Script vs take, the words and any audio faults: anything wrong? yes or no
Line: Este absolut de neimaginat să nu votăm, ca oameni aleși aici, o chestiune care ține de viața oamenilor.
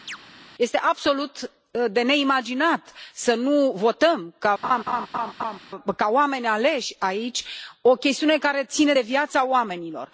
yes